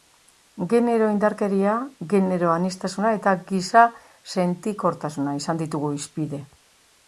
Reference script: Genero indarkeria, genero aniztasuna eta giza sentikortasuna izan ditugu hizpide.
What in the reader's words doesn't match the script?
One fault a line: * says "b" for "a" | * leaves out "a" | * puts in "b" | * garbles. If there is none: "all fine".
all fine